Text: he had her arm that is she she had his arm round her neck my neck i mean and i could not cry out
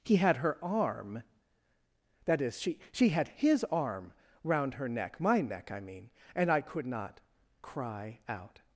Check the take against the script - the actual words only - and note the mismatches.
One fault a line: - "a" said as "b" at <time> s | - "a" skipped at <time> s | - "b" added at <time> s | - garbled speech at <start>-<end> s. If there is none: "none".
none